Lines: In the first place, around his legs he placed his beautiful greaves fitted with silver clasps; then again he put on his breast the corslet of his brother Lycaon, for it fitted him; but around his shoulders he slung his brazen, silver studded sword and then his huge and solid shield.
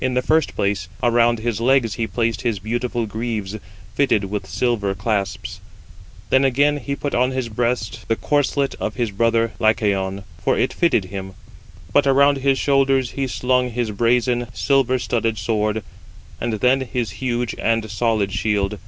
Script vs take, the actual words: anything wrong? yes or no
no